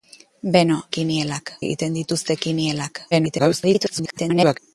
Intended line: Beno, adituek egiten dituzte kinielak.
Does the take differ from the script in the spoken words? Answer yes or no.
yes